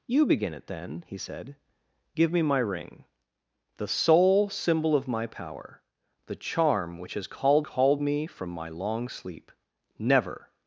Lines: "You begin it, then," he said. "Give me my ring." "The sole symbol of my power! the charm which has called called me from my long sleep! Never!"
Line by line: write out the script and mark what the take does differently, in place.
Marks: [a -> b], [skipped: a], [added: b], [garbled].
"You begin it, then," he said. "Give me my ring." "The sole symbol of my power! the charm which has called called me from my long sleep! Never!"